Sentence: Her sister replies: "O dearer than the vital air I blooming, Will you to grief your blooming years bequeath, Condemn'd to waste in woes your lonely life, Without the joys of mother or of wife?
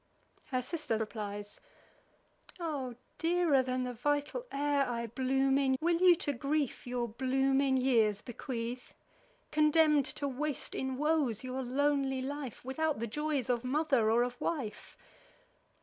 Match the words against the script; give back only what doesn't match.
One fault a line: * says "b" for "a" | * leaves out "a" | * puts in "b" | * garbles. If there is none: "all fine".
all fine